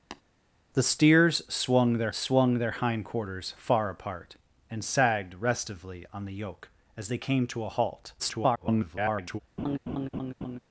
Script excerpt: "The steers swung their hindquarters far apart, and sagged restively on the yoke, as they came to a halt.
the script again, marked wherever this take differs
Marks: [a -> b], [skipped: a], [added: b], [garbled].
"The steers swung their [added: swung their] hindquarters far apart, and sagged restively on the yoke, as they came to a halt. [garbled]